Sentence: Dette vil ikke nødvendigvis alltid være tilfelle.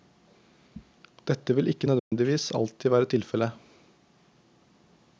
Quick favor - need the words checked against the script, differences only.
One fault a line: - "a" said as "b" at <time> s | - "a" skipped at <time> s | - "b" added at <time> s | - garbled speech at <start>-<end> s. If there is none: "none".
none